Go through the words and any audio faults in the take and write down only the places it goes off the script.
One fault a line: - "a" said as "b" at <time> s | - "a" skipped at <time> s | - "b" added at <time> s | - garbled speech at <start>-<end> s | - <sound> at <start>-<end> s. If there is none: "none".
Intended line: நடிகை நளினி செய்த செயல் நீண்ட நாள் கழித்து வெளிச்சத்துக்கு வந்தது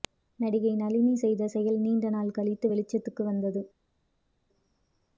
none